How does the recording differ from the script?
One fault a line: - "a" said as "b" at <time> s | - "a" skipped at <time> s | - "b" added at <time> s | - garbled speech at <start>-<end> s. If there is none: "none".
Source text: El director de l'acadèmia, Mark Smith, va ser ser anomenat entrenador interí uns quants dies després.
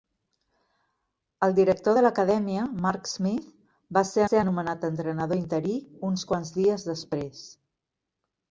none